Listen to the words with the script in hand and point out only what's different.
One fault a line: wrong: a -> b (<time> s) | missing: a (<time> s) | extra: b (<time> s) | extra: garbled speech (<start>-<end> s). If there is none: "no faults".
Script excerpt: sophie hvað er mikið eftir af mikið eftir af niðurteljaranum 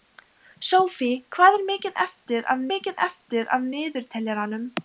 no faults